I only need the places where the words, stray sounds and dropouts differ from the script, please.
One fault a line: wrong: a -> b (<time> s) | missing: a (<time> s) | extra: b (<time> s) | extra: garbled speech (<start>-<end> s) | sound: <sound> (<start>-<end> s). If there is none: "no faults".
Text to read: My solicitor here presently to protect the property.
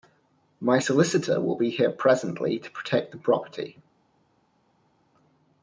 extra: will be (1.4 s)